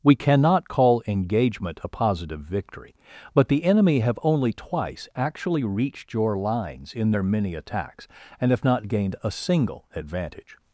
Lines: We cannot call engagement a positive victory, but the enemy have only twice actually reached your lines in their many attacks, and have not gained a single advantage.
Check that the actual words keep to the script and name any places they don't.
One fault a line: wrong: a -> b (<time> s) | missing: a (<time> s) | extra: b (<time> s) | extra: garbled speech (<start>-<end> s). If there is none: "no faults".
no faults